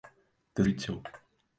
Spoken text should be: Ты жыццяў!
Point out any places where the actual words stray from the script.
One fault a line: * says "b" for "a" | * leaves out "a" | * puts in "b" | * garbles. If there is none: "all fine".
all fine